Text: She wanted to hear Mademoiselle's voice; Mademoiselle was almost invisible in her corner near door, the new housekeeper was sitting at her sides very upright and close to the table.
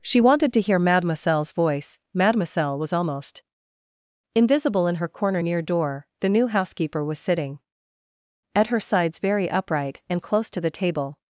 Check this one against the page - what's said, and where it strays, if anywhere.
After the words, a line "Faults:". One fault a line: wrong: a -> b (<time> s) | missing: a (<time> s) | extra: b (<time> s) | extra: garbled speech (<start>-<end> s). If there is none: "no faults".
She wanted to hear Mademoiselle's voice; Mademoiselle was almost invisible in her corner near door, the new housekeeper was sitting at her sides very upright and close to the table.
Faults:
no faults